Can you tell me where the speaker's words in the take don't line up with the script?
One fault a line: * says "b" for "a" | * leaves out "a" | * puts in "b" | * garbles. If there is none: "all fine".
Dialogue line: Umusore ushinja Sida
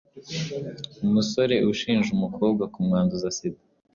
* puts in "umukobwa kumwanduza"